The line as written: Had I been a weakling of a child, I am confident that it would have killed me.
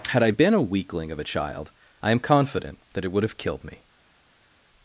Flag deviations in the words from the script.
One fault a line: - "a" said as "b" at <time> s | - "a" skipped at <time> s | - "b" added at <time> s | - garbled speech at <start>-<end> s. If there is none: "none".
none